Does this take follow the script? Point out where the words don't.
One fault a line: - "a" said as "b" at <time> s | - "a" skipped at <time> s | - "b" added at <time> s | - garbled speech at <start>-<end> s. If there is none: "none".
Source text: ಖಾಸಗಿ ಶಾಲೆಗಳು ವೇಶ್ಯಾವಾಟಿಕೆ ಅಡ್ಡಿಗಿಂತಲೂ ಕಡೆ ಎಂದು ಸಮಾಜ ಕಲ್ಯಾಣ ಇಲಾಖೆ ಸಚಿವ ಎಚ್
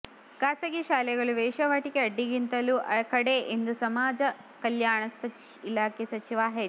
none